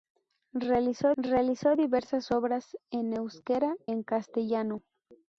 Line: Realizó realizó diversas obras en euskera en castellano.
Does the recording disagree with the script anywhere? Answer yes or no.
no